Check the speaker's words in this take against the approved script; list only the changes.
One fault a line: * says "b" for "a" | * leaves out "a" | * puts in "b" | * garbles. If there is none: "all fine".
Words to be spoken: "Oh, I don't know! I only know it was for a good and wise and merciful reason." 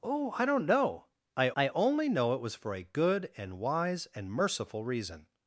* puts in "I"